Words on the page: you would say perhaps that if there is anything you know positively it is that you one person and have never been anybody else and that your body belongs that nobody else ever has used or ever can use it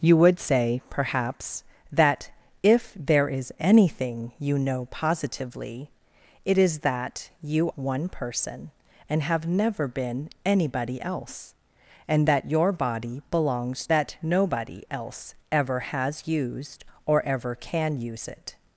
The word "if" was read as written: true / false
true